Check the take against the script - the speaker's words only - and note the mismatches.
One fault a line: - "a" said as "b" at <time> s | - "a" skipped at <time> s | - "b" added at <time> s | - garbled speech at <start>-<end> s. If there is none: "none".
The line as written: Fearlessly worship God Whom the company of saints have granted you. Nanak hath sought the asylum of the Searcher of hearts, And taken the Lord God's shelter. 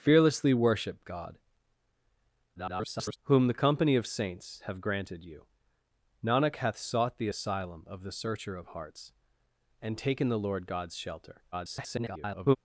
- garbled speech at 2.5-3.2 s
- garbled speech at 11.5-12.6 s